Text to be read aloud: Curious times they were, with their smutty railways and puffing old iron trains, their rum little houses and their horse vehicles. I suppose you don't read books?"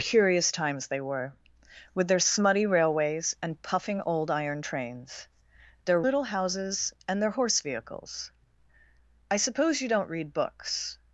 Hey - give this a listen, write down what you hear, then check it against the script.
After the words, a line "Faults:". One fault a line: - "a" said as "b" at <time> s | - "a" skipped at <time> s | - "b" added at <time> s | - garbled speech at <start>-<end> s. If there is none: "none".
Curious times they were, with their smutty railways and puffing old iron trains, their little houses and their horse vehicles. I suppose you don't read books?"
Faults:
- "rum" skipped at 6.0 s